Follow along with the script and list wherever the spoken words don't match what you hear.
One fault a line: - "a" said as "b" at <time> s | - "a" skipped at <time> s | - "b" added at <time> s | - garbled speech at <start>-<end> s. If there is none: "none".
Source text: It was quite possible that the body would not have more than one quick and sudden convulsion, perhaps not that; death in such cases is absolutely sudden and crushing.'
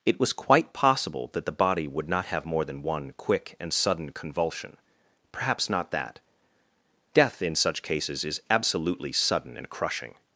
none